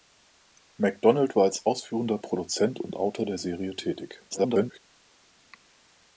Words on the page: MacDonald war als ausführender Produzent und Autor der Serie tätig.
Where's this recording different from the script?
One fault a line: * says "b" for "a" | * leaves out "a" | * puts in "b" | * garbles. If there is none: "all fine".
* garbles